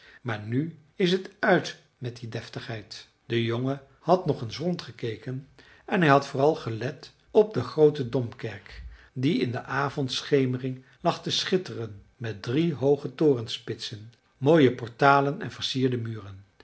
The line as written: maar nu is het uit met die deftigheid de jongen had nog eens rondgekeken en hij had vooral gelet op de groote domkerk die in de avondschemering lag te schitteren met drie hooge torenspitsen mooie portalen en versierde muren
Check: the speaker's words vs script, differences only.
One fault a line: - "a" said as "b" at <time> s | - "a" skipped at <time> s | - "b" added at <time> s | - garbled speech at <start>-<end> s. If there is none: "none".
none